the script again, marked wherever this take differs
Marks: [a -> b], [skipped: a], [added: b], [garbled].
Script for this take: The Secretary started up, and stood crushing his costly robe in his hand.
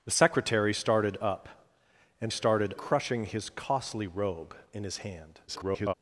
The Secretary started up, and [stood -> started] crushing his costly robe in his hand. [garbled]